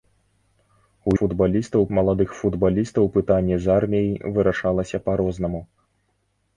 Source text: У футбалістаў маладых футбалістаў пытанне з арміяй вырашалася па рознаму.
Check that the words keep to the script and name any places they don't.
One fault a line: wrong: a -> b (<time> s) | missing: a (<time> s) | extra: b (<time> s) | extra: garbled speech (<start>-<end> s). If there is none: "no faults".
no faults